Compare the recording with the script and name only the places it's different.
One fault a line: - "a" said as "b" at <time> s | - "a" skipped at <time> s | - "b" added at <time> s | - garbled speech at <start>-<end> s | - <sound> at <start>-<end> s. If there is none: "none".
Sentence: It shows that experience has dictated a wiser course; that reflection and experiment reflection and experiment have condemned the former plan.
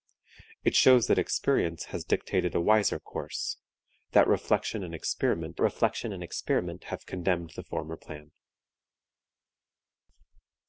none